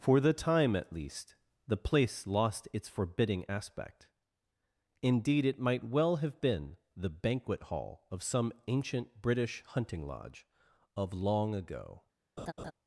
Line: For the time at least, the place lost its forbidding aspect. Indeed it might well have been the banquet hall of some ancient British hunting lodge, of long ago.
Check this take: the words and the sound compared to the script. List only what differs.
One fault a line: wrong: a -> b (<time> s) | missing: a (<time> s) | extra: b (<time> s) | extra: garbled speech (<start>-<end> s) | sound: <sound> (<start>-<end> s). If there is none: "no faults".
sound: laugh (12.4-12.7 s)